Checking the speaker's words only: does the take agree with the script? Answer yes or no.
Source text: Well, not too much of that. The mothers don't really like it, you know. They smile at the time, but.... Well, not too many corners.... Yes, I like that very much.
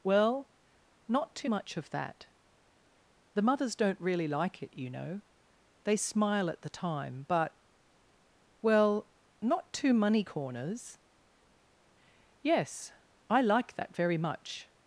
no